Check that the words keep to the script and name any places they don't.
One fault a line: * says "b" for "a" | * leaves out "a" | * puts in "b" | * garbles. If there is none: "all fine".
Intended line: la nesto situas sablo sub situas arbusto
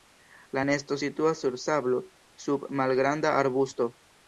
* puts in "sur"
* says "malgranda" for "situas"